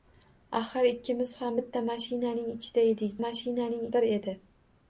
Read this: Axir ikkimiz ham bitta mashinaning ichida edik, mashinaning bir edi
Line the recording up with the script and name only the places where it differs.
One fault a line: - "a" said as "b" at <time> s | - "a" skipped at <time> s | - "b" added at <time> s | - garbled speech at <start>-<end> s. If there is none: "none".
none